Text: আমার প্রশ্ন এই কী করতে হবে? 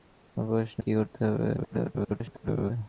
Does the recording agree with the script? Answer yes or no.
no